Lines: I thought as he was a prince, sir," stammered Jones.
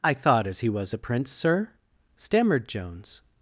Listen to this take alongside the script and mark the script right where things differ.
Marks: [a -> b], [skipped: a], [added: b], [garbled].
I thought as he was a prince, sir," stammered Jones.